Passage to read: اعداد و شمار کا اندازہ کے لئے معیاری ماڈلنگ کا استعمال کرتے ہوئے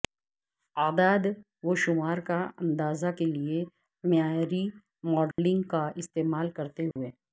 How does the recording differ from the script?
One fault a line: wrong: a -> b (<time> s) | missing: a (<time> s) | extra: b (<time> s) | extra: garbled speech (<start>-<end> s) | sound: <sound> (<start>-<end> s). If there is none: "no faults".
sound: dropout (5.3-5.4 s)
sound: dropout (6.9-7.0 s)